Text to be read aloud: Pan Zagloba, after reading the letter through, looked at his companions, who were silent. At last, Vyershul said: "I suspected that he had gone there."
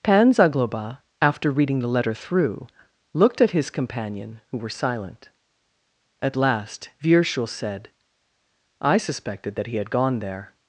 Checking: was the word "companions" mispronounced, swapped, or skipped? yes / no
yes